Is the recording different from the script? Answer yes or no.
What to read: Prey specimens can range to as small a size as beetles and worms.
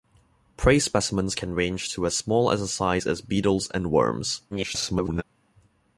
yes